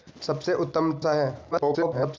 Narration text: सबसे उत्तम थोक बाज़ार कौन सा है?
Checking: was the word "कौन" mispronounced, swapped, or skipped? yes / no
yes